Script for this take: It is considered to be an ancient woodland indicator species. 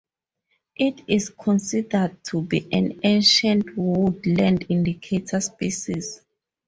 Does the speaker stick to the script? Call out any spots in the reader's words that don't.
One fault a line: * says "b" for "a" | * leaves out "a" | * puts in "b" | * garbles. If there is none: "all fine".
all fine